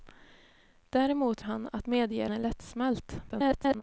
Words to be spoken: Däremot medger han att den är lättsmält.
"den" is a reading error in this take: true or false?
true